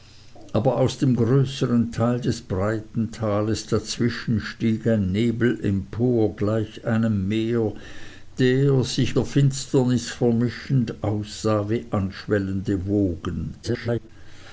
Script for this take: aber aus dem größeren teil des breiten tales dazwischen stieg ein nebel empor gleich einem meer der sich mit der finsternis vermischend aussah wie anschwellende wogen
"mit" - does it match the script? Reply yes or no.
no